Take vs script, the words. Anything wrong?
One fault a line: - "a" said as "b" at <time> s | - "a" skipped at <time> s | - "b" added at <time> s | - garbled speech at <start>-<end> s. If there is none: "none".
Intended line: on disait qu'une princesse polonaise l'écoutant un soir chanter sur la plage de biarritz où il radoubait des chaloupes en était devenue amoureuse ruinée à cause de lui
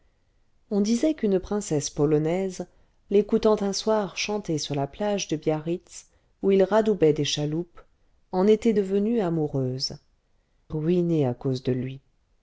none